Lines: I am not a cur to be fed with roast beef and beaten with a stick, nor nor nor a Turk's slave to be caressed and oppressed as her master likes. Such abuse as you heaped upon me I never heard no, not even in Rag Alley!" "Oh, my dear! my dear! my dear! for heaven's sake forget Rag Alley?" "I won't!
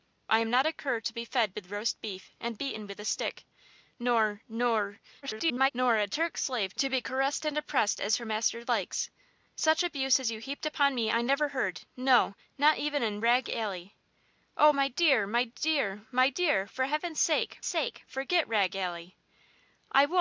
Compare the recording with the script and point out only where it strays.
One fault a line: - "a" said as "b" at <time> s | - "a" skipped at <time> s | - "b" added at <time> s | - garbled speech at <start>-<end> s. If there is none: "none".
- garbled speech at 5.2-5.7 s
- "sake" added at 17.6 s